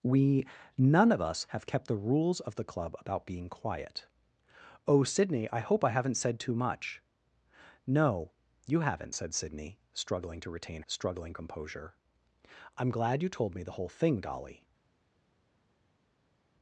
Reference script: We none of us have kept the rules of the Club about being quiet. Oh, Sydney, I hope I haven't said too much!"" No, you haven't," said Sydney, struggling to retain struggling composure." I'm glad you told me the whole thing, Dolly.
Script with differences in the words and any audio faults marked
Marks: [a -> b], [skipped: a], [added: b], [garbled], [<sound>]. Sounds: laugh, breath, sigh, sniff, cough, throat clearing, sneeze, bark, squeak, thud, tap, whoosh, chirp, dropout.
We none of us have kept the rules of the Club about being quiet. Oh, Sydney, I hope I haven't said too much!"" No, you haven't," said Sydney, struggling to retain struggling composure." I'm glad you told me the whole thing, Dolly.